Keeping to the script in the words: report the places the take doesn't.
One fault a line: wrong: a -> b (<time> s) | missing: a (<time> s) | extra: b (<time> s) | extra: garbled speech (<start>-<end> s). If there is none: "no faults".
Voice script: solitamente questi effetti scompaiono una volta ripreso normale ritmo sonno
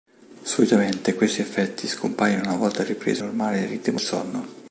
no faults